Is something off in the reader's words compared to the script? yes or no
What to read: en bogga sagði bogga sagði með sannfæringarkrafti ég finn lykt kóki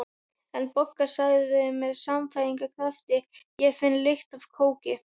yes